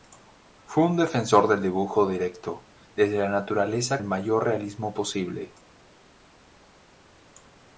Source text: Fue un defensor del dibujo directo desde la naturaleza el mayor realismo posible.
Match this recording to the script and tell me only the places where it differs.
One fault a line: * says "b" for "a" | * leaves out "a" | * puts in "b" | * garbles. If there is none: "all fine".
all fine